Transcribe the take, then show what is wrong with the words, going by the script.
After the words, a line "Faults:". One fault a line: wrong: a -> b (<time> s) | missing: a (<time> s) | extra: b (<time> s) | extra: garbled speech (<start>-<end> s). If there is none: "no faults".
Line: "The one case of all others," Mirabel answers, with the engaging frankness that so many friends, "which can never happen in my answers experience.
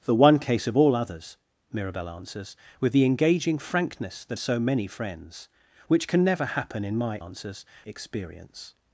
"The one case of all others," Mirabel answers, with the engaging frankness that so many friends, "which can never happen in my answers experience.
Faults:
no faults